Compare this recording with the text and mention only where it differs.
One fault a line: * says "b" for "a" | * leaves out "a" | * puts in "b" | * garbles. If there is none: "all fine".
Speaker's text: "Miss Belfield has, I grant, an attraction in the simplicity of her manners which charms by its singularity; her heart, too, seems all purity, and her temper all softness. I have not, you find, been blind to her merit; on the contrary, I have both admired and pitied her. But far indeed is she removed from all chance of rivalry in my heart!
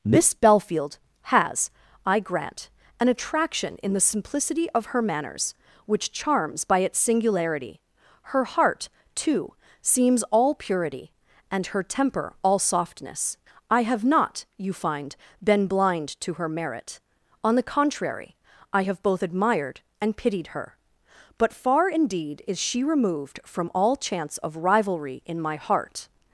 all fine